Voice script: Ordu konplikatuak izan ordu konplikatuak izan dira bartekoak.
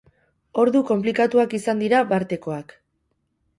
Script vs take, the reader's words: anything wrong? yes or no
yes